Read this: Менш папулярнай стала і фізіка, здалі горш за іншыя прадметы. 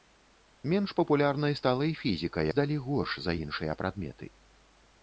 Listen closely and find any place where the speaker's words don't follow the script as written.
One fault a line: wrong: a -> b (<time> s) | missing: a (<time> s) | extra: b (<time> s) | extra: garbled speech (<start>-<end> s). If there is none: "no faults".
no faults